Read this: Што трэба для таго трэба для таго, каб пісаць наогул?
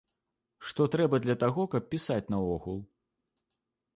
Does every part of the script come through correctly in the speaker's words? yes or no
no